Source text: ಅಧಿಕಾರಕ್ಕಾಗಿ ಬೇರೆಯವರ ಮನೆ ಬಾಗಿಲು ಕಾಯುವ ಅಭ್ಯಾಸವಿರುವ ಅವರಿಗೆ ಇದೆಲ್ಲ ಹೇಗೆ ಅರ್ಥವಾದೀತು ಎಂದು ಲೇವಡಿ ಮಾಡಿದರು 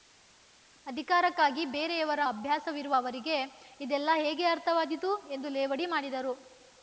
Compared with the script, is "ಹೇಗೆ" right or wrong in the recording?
right